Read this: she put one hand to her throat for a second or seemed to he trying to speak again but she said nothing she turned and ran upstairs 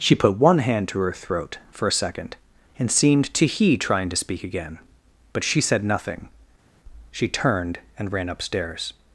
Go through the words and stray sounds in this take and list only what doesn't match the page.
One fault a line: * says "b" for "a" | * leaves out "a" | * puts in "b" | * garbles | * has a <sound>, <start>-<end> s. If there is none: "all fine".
* says "and" for "or"